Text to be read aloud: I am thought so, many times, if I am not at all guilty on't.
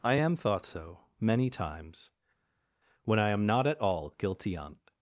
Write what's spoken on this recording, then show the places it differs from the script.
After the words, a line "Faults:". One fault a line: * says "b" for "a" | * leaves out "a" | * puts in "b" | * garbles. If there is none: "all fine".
I am thought so, many times, when I am not at all guilty on't.
Faults:
* says "when" for "if"